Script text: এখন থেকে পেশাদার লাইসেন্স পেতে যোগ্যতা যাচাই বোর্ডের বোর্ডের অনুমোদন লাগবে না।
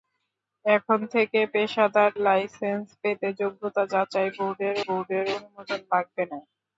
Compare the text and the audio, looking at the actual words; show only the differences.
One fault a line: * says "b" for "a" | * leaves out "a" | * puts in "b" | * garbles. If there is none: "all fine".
all fine